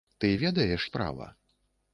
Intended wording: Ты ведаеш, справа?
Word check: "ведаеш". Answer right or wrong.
right